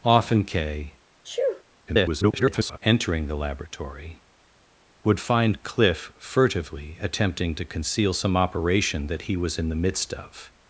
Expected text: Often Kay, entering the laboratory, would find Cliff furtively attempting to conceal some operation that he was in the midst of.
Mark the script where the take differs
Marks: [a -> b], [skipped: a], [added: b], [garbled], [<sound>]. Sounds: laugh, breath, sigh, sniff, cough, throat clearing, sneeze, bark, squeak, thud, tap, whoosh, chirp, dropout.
Often Kay, [sneeze] [garbled] entering the laboratory, would find Cliff furtively attempting to conceal some operation that he was in the midst of.